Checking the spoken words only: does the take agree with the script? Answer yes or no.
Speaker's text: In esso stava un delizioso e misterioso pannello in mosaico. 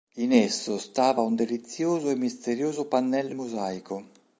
no